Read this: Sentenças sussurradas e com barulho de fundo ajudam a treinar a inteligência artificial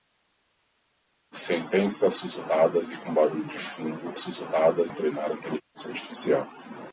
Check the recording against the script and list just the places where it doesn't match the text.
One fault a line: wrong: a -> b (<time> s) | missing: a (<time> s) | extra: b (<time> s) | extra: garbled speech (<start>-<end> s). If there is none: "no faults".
wrong: ajudam -> sussurradas (4.2 s)